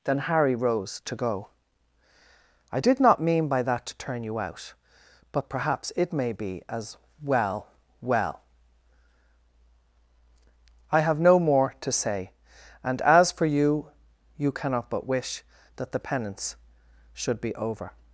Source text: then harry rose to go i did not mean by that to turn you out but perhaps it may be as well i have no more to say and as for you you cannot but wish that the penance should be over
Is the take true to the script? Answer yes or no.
no